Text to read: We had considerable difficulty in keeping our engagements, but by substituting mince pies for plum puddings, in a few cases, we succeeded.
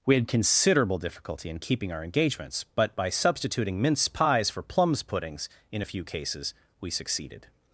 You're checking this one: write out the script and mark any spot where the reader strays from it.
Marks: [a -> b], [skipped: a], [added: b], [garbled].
We had considerable difficulty in keeping our engagements, but by substituting mince pies for [plum -> plums] puddings, in a few cases, we succeeded.